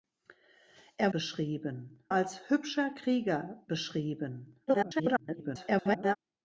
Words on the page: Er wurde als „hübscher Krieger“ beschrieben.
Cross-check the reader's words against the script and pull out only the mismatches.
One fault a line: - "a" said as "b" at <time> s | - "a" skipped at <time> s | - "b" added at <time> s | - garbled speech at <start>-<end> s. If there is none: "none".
- "wurde" said as "beschrieben" at 1.1 s
- garbled speech at 4.7-6.2 s